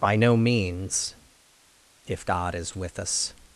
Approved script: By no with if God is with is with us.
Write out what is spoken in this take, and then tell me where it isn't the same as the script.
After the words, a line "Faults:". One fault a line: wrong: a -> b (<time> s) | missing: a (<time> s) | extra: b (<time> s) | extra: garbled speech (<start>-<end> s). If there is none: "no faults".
By no means if God is with us.
Faults:
wrong: with -> means (0.3 s)
missing: is with (3.0 s)